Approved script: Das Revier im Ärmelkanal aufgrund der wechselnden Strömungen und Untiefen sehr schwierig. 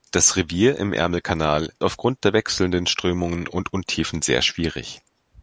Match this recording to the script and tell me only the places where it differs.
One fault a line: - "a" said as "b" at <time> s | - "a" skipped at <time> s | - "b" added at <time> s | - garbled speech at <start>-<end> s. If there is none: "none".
none